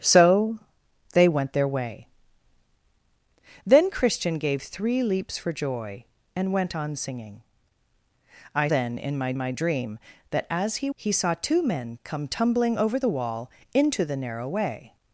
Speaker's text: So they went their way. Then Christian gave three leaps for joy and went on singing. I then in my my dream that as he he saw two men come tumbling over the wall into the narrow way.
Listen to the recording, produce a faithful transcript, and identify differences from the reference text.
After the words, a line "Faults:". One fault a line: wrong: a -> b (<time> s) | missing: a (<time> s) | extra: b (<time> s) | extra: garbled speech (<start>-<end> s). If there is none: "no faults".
So they went their way. Then Christian gave three leaps for joy and went on singing. I then in my my dream that as he he saw two men come tumbling over the wall into the narrow way.
Faults:
no faults